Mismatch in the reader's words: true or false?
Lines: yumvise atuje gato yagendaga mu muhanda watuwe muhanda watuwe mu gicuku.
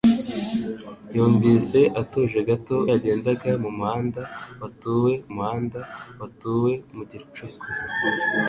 false